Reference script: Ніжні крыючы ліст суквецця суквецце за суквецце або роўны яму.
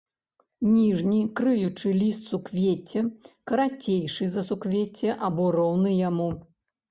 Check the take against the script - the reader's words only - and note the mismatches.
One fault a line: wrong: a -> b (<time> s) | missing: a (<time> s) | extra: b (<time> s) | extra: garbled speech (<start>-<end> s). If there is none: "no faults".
wrong: суквецце -> карацейшы (3.5 s)